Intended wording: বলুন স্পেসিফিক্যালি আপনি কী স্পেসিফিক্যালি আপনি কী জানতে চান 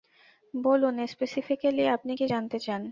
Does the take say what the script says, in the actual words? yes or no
no